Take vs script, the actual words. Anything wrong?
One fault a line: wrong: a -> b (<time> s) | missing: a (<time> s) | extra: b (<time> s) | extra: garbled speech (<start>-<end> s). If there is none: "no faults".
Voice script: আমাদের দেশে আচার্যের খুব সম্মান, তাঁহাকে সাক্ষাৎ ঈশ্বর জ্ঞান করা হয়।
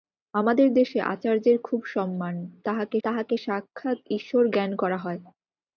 extra: তাঁহাকে (3.0 s)